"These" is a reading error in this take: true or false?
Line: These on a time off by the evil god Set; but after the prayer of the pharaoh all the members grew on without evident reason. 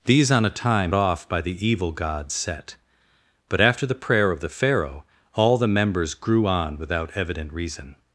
false